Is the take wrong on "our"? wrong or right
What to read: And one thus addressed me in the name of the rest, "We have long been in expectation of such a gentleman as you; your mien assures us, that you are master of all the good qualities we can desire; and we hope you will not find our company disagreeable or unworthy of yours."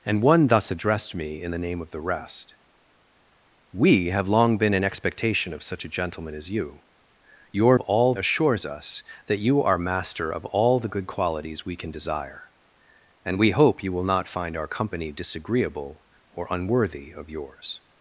right